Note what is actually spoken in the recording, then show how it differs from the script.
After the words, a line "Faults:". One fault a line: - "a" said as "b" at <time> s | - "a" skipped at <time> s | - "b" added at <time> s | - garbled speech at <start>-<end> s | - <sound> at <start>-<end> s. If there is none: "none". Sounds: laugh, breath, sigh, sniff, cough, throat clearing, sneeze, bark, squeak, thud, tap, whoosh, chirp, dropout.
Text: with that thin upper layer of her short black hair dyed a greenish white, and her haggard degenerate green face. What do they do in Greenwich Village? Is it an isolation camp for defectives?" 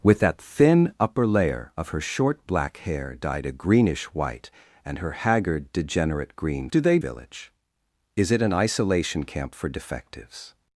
with that thin upper layer of her short black hair dyed a greenish white, and her haggard degenerate green do they Village? Is it an isolation camp for defectives?"
Faults:
- "face What" skipped at 6.7 s
- "do in Greenwich" skipped at 7.0 s